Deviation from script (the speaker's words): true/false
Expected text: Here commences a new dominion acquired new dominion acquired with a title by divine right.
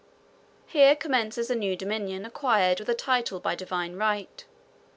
true